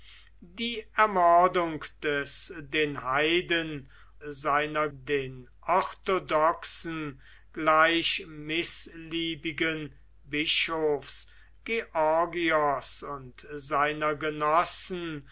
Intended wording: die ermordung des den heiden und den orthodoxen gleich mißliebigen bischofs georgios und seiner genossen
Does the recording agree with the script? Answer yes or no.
no